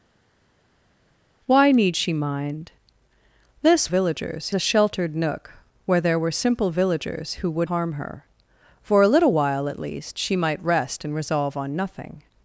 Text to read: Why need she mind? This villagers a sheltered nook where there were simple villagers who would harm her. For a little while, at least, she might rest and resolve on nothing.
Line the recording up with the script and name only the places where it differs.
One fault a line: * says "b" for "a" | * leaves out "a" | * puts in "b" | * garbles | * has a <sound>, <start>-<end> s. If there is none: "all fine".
all fine